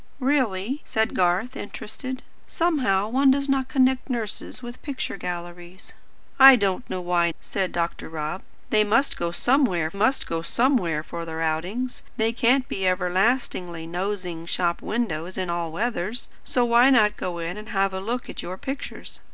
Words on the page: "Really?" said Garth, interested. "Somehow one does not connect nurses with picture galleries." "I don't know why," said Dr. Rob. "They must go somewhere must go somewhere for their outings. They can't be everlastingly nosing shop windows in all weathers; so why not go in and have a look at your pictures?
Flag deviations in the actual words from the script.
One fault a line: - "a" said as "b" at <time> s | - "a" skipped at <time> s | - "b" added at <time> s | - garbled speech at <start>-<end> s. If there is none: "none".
none